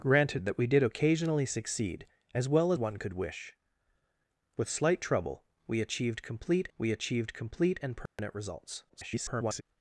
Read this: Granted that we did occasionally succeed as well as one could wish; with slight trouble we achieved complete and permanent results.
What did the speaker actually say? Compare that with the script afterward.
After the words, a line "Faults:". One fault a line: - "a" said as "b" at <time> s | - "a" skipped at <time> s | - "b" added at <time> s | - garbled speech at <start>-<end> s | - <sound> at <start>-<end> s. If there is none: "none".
Granted that we did occasionally succeed as well one could wish; with slight trouble we achieved complete we achieved complete and permanent results. [garbled]
Faults:
- "as" skipped at 2.7 s
- "we achieved complete" added at 6.8 s
- dropout at 8.1-8.2 s
- garbled speech at 8.9-9.6 s